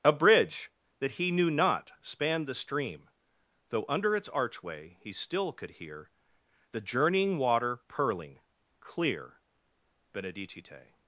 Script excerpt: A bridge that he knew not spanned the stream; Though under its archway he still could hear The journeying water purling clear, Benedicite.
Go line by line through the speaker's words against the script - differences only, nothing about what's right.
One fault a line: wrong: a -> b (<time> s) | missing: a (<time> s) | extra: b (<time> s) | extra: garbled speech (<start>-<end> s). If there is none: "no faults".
no faults